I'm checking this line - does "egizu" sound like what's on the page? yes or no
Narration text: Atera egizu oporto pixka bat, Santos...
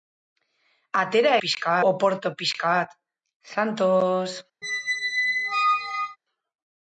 no